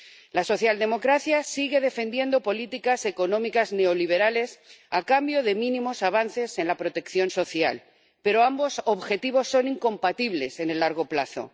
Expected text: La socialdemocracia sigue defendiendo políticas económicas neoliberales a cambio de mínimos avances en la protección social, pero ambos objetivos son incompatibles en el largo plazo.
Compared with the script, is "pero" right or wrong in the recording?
right